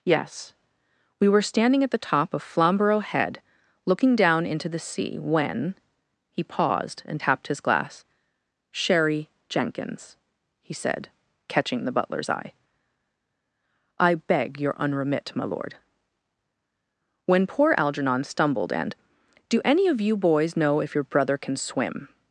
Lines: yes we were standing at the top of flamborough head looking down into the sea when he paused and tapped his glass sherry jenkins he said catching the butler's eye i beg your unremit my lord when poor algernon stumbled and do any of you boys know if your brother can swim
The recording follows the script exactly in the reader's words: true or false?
true